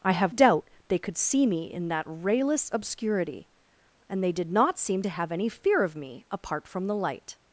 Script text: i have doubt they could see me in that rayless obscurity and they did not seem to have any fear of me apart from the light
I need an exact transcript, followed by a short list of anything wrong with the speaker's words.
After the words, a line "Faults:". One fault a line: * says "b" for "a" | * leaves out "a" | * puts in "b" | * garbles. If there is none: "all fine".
i have doubt they could see me in that rayless obscurity and they did not seem to have any fear of me apart from the light
Faults:
all fine